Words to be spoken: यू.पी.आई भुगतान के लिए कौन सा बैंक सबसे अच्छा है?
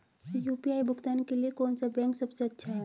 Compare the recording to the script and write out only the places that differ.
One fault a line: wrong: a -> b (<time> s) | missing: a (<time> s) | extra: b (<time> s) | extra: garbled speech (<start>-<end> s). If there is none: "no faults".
no faults